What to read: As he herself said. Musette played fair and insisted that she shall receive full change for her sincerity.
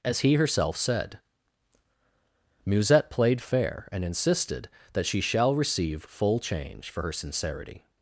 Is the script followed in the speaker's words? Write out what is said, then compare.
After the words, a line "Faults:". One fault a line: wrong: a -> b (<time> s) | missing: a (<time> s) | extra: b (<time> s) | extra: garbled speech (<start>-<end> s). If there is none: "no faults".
As he herself said. Musette played fair and insisted that she shall receive full change for her sincerity.
Faults:
no faults